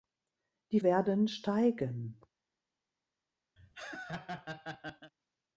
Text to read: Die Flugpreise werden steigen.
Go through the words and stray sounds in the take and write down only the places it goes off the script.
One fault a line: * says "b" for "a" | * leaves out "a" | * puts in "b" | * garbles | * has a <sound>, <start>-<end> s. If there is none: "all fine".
* leaves out "Flugpreise"
* has a laugh, 3.6-5.1 s